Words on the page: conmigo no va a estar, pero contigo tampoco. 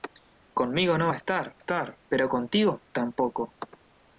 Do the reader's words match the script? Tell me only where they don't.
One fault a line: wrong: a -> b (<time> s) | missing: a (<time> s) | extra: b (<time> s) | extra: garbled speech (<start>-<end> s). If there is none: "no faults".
extra: estar (1.6 s)